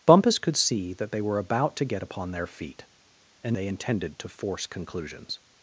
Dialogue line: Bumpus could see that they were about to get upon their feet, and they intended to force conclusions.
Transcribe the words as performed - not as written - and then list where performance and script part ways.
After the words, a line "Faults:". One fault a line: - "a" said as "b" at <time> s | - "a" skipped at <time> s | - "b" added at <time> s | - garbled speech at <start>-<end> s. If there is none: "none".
Bumpus could see that they were about to get upon their feet, and they intended to force conclusions.
Faults:
none